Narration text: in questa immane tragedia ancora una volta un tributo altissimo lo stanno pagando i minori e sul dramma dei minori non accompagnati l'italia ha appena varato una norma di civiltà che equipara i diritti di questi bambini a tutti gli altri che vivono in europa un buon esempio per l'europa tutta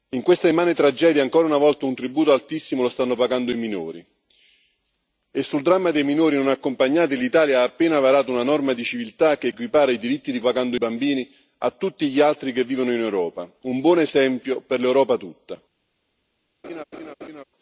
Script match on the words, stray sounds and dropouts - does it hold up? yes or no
no